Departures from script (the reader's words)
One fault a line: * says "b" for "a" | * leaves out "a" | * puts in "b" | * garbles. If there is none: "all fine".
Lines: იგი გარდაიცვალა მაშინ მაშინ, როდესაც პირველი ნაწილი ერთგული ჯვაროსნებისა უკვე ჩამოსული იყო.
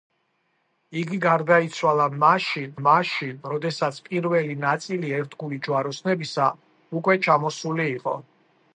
all fine